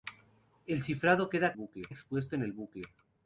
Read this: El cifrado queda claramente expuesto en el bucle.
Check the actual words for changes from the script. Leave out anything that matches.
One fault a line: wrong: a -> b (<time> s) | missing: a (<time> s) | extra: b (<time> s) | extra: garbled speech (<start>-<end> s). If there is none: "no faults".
wrong: claramente -> bucle (1.5 s)